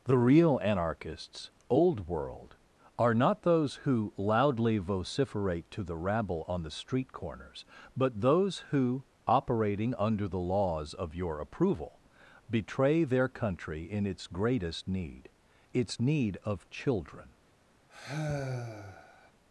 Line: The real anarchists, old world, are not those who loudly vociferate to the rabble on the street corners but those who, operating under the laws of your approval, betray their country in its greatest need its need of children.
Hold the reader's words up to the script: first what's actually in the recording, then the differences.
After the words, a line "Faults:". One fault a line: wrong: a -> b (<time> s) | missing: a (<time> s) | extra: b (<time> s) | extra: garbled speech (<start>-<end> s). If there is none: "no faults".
The real anarchists, old world, are not those who loudly vociferate to the rabble on the street corners but those who, operating under the laws of your approval, betray their country in its greatest need its need of children.
Faults:
no faults